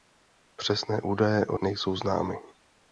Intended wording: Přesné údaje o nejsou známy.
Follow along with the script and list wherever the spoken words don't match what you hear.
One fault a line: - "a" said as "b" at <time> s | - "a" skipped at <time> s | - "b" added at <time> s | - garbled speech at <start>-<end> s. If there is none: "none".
none